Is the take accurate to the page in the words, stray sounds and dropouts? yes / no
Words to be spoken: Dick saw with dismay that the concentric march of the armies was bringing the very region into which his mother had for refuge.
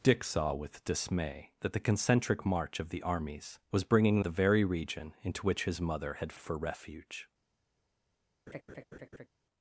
no